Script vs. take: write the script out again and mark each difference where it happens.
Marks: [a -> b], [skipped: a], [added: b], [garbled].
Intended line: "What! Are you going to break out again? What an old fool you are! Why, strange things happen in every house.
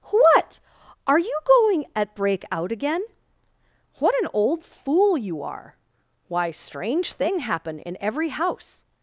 "What! Are you going [to -> at] break out again? What an old fool you are! Why, strange [things -> thing] happen in every house.